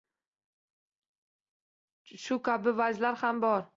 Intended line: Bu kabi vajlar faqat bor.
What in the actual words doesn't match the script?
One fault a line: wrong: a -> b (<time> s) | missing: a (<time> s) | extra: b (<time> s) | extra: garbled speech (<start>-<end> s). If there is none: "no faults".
wrong: Bu -> Shu (2.2 s)
wrong: faqat -> ham (3.2 s)